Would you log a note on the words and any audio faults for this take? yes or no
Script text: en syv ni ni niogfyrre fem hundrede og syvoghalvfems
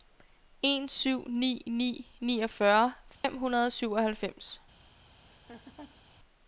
yes